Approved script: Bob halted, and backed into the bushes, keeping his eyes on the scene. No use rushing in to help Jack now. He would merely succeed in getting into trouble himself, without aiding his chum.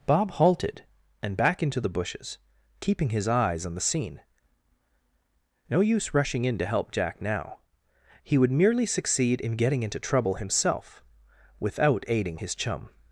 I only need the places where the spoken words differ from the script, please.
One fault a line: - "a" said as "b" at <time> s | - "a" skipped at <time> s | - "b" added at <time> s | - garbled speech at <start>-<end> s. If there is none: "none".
- "backed" said as "back" at 1.4 s